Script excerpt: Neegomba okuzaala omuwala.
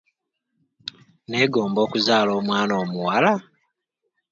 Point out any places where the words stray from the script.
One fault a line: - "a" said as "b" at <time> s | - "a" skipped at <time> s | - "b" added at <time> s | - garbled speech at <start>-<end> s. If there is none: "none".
- "omwana" added at 2.4 s